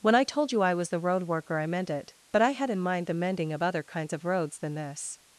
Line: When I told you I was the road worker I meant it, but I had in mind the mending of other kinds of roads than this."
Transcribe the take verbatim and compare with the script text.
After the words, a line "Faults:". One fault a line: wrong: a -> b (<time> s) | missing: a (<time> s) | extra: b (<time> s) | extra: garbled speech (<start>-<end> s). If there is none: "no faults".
When I told you I was the road worker I meant it, but I had in mind the mending of other kinds of roads than this."
Faults:
no faults